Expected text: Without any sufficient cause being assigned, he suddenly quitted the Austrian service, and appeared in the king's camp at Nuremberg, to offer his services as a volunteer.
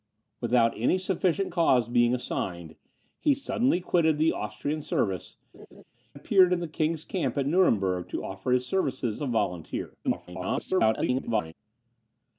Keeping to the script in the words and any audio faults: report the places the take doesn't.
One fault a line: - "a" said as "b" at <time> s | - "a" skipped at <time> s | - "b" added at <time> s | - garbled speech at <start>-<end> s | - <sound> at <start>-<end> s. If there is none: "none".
- "and" skipped at 5.3 s
- laugh at 5.5-5.8 s
- "as" skipped at 9.2 s
- garbled speech at 10.0-11.5 s